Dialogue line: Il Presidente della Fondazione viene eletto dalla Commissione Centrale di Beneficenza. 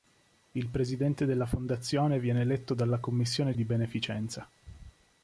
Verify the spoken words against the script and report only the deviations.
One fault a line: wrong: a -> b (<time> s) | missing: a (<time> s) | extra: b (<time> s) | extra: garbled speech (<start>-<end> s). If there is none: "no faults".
missing: Centrale (3.5 s)